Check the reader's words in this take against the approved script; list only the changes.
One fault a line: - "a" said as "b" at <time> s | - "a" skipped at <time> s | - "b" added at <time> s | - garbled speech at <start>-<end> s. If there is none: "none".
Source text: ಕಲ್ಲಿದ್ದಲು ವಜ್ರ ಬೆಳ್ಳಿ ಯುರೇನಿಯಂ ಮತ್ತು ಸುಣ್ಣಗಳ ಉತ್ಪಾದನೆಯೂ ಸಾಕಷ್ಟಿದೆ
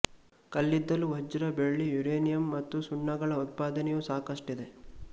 none